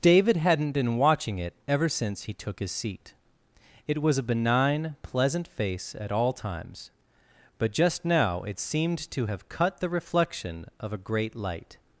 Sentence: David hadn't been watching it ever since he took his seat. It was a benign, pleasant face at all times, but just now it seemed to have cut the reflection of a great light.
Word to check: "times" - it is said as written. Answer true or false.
true